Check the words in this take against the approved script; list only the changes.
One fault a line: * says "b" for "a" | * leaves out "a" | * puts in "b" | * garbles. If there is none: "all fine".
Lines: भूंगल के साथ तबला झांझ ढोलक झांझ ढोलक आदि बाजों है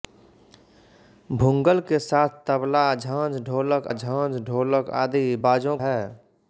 all fine